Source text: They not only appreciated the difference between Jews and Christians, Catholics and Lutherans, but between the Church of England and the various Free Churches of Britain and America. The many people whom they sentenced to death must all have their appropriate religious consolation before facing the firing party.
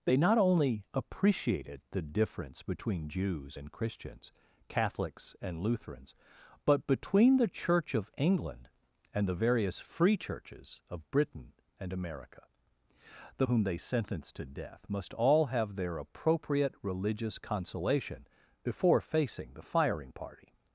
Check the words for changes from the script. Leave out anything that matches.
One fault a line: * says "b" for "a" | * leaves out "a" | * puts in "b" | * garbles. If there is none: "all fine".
* leaves out "many people"